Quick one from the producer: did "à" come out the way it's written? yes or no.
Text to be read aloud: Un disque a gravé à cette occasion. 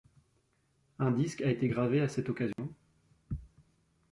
yes